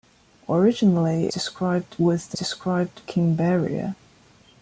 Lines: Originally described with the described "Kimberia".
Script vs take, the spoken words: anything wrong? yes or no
no